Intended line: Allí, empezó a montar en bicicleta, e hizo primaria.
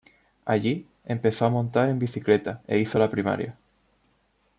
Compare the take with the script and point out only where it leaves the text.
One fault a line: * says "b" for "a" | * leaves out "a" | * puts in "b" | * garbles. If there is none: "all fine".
* puts in "la"